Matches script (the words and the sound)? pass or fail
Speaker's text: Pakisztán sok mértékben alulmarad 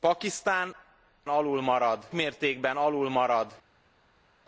fail